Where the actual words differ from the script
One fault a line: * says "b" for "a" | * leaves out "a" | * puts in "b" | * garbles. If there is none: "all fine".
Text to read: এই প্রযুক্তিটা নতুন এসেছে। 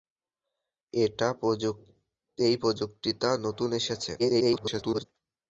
* garbles